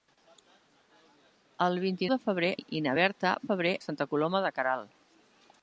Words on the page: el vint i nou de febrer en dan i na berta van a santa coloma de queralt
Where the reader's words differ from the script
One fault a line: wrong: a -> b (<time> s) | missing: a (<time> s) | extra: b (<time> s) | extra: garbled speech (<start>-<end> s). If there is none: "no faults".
missing: nou (2.1 s)
missing: en dan (2.5 s)
wrong: van -> febrer (3.5 s)